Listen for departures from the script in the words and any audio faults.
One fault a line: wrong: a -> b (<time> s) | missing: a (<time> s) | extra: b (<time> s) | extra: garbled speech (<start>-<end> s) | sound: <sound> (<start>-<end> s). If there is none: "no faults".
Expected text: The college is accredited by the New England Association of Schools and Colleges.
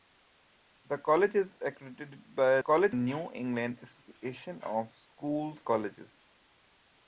wrong: the -> college (2.6 s)
missing: and (5.7 s)